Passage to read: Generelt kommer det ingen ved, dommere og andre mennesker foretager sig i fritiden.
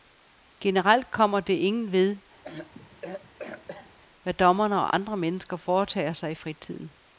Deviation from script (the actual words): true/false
true